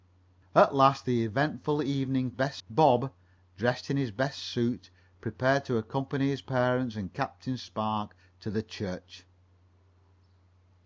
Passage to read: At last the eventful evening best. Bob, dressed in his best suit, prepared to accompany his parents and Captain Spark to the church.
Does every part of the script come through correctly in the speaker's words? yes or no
yes